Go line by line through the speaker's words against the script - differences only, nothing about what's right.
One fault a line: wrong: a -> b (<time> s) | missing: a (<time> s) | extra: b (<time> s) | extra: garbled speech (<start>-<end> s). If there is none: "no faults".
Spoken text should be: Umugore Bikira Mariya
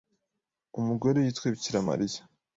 extra: yitwe (1.2 s)